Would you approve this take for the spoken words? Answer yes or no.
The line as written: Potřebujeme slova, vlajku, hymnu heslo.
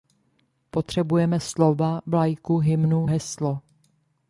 yes